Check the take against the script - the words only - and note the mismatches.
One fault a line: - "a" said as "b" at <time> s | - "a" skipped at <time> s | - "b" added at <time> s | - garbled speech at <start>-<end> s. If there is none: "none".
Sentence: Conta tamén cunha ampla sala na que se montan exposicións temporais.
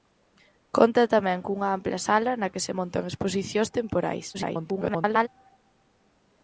- garbled speech at 4.3-5.3 s